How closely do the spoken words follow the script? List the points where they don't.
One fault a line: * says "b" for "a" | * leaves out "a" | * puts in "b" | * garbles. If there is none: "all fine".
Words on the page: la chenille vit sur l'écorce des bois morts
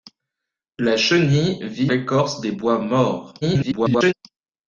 * leaves out "sur"
* garbles